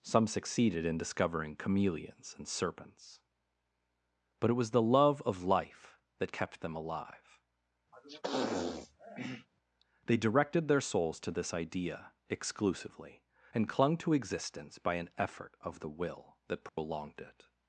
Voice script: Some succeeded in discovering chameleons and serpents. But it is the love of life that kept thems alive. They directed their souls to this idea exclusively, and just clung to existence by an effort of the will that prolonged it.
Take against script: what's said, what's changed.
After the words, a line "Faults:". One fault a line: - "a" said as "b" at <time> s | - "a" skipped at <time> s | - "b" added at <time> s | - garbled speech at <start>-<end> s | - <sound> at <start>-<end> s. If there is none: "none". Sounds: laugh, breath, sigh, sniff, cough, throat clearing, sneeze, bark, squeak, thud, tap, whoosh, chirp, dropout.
Some succeeded in discovering chameleons and serpents. But it was the love of life that kept them alive. They directed their souls to this idea exclusively, and clung to existence by an effort of the will that prolonged it.
Faults:
- "is" said as "was" at 4.5 s
- "thems" said as "them" at 6.6 s
- sniff at 7.9-9.5 s
- "just" skipped at 13.7 s
- dropout at 16.7-16.8 s